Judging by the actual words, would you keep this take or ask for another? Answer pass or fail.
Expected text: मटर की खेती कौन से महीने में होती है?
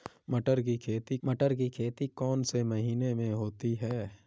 fail